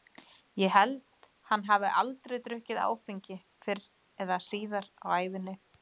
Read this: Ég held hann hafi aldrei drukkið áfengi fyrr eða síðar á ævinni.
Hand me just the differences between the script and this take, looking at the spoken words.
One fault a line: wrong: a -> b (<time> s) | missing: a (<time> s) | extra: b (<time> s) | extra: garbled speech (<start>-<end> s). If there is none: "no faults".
no faults